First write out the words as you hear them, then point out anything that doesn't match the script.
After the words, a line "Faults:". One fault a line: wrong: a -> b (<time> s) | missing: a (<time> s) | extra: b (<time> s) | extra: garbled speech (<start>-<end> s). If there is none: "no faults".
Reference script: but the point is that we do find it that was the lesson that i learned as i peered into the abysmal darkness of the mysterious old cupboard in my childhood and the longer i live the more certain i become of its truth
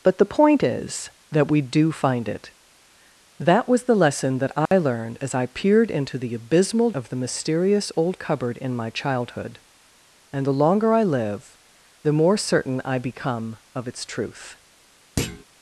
but the point is that we do find it that was the lesson that i learned as i peered into the abysmal of the mysterious old cupboard in my childhood and the longer i live the more certain i become of its truth
Faults:
missing: darkness (6.9 s)